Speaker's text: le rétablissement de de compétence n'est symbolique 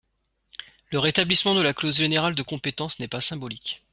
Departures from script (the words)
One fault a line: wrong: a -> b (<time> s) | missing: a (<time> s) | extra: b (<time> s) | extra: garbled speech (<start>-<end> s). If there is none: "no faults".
extra: la clause générale (1.6 s)
extra: pas (3.1 s)